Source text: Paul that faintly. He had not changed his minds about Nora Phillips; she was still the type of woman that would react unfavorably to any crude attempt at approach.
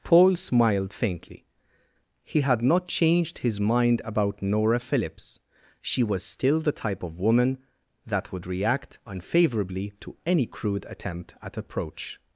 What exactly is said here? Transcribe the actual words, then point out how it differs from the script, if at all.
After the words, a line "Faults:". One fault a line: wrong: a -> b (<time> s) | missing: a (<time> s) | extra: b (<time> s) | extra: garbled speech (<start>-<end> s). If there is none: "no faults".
Paul smiled faintly. He had not changed his mind about Nora Phillips; she was still the type of woman that would react unfavorably to any crude attempt at approach.
Faults:
wrong: that -> smiled (0.3 s)
wrong: minds -> mind (3.6 s)